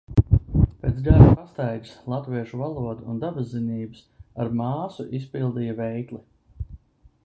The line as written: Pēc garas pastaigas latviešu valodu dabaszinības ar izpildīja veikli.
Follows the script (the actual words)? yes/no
no